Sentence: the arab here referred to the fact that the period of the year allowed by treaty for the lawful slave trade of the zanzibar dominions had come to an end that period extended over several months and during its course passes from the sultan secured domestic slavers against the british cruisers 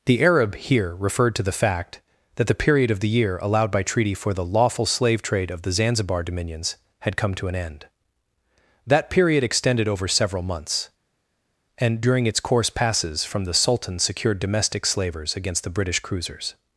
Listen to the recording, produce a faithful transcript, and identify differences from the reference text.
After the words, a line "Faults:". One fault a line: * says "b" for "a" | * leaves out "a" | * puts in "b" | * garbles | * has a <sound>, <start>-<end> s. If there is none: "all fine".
the arab here referred to the fact that the period of the year allowed by treaty for the lawful slave trade of the zanzibar dominions had come to an end that period extended over several months and during its course passes from the sultan secured domestic slavers against the british cruisers
Faults:
all fine